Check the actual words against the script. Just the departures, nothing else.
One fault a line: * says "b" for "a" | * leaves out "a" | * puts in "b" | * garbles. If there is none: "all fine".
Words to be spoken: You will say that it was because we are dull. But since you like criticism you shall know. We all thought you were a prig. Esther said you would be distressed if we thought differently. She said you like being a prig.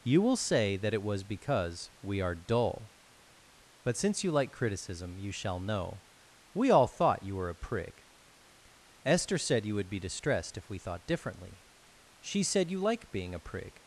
all fine